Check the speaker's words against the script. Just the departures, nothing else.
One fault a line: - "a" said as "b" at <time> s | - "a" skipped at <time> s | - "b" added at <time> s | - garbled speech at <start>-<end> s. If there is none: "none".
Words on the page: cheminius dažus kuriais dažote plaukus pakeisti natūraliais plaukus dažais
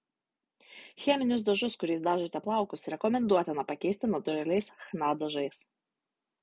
- "rekomenduotina" added at 2.9 s
- "plaukus" said as "chna" at 4.9 s